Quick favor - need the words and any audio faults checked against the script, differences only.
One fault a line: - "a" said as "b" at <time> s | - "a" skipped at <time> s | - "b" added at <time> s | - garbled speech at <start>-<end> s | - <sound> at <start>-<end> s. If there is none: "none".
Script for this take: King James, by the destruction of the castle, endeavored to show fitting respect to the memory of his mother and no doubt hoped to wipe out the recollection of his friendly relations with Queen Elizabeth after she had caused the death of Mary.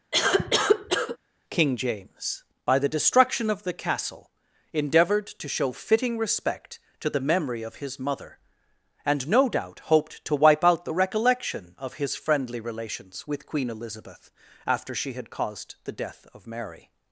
- cough at 0.1-1.2 s